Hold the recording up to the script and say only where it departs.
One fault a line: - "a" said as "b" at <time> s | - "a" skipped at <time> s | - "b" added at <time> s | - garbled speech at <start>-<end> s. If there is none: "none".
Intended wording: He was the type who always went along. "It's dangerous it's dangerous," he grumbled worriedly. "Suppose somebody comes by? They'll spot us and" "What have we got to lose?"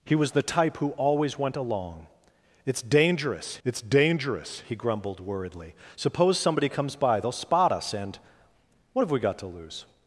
none